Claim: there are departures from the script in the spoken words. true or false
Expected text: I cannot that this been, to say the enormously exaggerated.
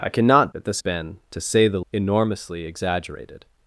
false